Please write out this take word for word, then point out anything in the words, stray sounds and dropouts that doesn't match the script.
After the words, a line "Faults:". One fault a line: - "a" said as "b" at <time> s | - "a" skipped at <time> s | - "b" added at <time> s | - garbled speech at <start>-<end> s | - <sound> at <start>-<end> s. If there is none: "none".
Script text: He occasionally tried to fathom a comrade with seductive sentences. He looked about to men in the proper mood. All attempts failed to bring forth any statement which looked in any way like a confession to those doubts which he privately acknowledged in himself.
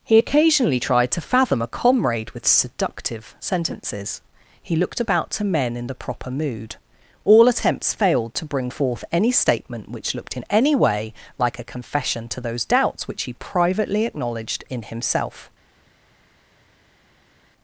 He occasionally tried to fathom a comrade with seductive sentences. He looked about to men in the proper mood. All attempts failed to bring forth any statement which looked in any way like a confession to those doubts which he privately acknowledged in himself.
Faults:
none